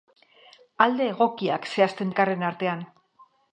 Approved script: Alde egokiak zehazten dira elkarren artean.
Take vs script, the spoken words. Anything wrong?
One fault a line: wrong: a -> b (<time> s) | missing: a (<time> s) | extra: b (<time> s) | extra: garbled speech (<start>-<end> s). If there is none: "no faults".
missing: dira (2.1 s)